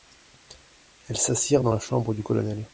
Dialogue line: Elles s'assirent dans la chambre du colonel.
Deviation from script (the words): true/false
false